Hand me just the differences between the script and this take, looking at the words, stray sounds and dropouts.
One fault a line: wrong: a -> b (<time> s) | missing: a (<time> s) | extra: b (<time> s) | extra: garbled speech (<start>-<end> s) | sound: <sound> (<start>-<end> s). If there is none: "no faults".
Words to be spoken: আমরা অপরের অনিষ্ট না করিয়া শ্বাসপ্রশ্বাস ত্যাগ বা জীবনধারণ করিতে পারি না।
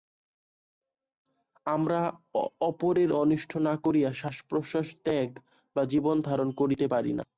no faults